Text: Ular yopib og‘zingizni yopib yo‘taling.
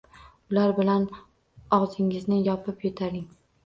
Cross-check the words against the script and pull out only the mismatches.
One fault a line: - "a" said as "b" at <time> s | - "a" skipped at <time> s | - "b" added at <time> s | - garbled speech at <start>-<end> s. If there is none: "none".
- "yopib" said as "bilan" at 0.8 s